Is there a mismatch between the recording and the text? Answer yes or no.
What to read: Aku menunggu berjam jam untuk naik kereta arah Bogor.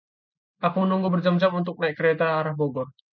no